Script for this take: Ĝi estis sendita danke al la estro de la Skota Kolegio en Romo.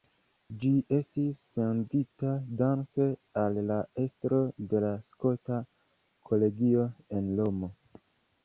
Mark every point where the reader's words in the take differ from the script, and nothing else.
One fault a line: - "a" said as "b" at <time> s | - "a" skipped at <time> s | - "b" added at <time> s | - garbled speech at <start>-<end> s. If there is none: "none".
none